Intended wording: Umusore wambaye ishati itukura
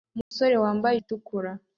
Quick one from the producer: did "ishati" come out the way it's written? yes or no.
no